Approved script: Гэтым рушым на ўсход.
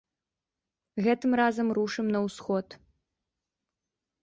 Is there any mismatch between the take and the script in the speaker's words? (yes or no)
yes